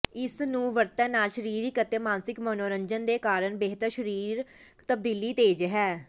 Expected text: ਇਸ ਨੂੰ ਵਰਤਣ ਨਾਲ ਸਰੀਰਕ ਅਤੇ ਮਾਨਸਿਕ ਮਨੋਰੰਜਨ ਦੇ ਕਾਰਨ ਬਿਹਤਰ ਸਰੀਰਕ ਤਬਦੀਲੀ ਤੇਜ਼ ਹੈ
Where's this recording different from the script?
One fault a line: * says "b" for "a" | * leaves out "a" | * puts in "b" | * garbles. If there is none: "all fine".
all fine